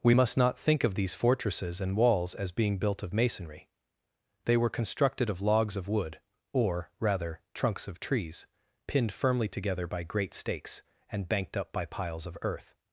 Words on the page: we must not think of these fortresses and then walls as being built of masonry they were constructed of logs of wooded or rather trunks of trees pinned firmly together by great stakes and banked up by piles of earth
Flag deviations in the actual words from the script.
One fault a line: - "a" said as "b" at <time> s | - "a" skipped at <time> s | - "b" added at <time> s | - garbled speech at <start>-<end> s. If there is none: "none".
- "then" skipped at 2.0 s
- "wooded" said as "wood" at 5.9 s